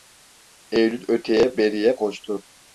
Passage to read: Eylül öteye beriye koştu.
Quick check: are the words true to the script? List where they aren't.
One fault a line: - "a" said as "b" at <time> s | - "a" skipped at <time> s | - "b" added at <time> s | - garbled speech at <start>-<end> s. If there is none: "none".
none